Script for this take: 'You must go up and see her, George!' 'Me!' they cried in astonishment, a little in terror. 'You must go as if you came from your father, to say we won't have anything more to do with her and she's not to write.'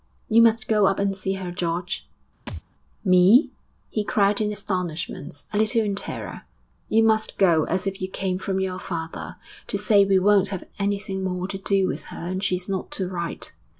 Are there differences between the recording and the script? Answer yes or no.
yes